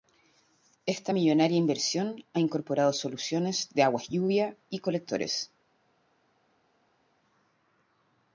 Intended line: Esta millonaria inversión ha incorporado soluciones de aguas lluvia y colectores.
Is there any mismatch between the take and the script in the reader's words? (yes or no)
no